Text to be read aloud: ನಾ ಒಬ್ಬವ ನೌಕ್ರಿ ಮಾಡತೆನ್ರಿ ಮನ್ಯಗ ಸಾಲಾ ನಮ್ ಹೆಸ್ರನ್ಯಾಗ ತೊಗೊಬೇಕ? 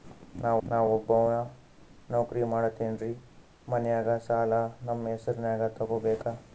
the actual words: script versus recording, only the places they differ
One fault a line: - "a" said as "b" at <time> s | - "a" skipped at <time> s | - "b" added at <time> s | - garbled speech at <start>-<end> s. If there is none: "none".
- "ನಾ" added at 0.6 s